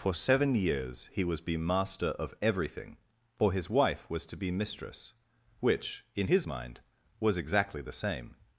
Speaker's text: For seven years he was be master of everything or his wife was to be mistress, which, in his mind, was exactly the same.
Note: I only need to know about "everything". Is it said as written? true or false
true